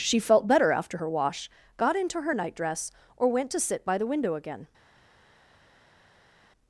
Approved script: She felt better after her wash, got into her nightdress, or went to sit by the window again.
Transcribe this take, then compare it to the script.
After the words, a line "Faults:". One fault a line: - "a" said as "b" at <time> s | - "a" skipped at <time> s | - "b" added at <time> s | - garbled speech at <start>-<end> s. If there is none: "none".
She felt better after her wash, got into her nightdress, or went to sit by the window again.
Faults:
none